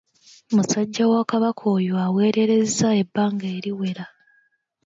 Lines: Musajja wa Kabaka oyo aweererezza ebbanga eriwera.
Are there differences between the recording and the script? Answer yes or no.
no